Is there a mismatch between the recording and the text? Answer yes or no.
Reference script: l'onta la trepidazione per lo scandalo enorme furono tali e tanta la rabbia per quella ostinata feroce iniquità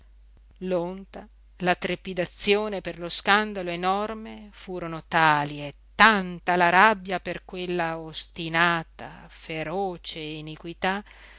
no